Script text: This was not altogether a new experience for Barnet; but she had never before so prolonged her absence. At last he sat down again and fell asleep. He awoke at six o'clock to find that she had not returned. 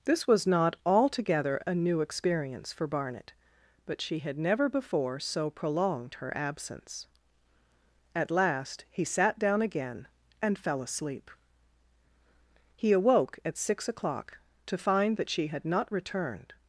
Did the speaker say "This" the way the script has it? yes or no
yes